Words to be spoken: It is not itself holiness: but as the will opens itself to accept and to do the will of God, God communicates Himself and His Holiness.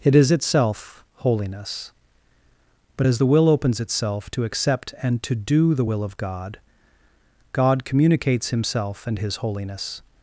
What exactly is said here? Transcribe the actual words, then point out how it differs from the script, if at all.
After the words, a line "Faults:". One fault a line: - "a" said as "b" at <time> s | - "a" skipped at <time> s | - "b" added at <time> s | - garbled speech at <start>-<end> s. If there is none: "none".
It is itself holiness: but as the will opens itself to accept and to do the will of God, God communicates Himself and His Holiness.
Faults:
- "not" skipped at 0.3 s